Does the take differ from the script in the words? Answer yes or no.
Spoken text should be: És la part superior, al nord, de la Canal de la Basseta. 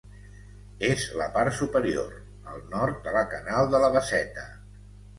no